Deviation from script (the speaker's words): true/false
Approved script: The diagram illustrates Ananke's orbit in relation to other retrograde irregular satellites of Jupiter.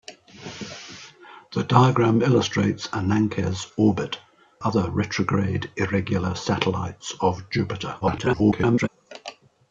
true